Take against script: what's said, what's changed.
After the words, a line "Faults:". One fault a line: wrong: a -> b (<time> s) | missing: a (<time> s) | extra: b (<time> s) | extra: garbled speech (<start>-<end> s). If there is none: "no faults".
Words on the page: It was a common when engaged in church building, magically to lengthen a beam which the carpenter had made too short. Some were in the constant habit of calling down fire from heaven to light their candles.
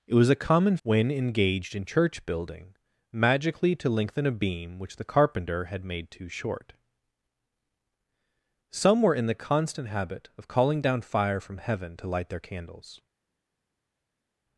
It was a common when engaged in church building, magically to lengthen a beam which the carpenter had made too short. Some were in the constant habit of calling down fire from heaven to light their candles.
Faults:
no faults